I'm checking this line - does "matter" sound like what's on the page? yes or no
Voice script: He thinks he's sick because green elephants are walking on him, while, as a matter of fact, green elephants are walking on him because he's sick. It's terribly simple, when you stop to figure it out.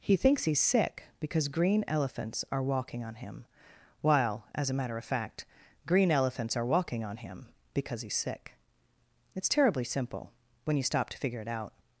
yes